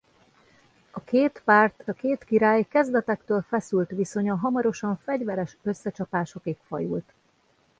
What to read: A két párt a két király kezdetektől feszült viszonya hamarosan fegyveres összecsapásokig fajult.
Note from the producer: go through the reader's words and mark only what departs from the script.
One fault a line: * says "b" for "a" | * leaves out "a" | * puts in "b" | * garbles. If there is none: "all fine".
all fine